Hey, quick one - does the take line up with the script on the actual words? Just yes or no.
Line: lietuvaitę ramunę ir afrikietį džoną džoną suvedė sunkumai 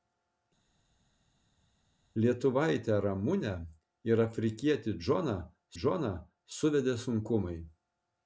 yes